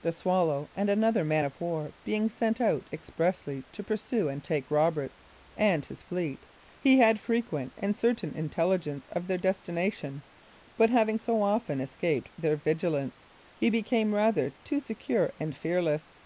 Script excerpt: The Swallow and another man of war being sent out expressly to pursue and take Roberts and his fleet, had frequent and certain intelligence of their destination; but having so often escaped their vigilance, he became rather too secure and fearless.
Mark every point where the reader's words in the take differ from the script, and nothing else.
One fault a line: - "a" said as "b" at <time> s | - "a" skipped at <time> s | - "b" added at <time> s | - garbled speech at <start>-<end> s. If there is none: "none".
- "he" added at 6.8 s